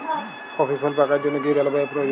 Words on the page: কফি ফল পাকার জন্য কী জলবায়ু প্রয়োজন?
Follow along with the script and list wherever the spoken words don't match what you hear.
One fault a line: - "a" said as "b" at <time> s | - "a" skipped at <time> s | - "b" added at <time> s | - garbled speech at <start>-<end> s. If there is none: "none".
none